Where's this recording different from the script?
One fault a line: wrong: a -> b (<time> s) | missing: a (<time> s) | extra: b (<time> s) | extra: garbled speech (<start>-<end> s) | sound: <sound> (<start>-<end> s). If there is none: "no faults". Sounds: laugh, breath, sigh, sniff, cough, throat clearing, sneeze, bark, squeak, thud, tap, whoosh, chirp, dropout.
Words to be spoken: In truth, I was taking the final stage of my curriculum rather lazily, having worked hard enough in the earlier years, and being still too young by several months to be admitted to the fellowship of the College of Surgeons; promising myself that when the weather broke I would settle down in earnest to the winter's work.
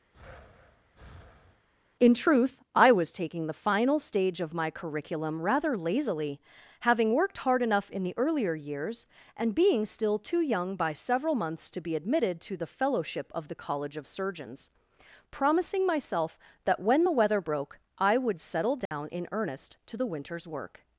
sound: breath (0.1-1.7 s)
sound: dropout (18.9-18.9 s)